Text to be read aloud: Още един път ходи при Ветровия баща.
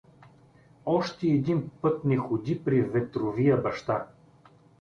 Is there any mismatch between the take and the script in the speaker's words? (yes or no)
yes